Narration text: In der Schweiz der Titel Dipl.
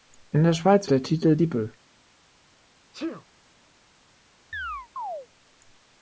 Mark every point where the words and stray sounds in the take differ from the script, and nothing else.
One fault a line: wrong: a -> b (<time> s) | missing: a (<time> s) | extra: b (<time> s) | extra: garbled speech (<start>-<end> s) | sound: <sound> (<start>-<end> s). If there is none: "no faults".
sound: sneeze (2.9-3.3 s)
sound: chirp (4.5-5.3 s)